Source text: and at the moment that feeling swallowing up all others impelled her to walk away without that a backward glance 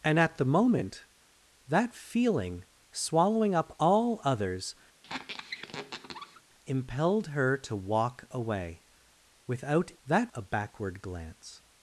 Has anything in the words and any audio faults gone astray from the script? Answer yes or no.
yes